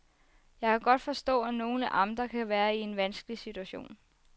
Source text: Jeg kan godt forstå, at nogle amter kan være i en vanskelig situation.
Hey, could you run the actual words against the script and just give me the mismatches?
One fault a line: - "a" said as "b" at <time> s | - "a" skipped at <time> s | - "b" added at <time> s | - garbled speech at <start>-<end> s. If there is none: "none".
none